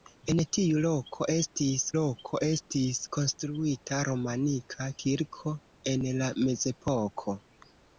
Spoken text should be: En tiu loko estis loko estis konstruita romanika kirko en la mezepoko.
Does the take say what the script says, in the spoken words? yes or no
yes